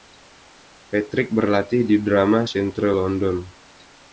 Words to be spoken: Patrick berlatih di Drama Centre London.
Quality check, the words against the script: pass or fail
pass